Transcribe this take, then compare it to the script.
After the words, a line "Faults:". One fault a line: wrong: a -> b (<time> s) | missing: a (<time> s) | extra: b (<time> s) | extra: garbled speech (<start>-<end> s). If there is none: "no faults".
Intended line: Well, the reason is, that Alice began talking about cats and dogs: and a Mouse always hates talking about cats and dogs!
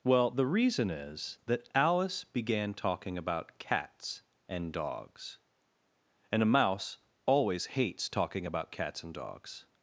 Well, the reason is, that Alice began talking about cats and dogs: and a Mouse always hates talking about cats and dogs!
Faults:
no faults